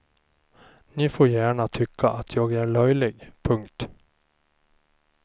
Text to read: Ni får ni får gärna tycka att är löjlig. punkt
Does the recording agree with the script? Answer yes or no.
no